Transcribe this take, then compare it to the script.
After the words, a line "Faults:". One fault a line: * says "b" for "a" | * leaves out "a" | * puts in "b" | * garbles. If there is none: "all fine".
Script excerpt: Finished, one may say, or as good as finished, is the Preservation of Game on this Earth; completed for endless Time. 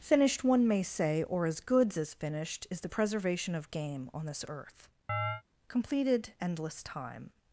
Finished, one may say, or as goods as finished, is the Preservation of Game on this Earth; completed endless Time.
Faults:
* says "goods" for "good"
* leaves out "for"